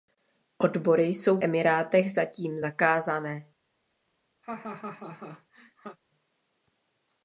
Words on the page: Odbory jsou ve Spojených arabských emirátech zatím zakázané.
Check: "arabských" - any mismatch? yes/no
yes